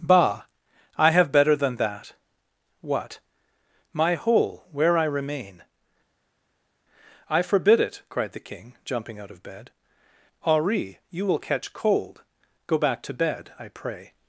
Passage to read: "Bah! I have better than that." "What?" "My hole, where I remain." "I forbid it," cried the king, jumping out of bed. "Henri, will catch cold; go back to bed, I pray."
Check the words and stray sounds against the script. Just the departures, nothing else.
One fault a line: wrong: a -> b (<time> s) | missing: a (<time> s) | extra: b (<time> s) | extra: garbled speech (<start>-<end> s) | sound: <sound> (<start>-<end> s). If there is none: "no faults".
extra: you (11.1 s)